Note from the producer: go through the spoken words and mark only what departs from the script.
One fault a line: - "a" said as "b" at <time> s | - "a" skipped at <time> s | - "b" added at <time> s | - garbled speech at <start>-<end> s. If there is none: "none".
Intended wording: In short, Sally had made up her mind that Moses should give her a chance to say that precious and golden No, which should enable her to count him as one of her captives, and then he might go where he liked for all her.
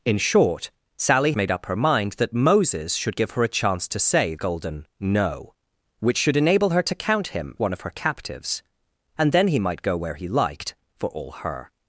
- "had" skipped at 1.3 s
- "that precious and" skipped at 4.3 s
- "as" skipped at 7.6 s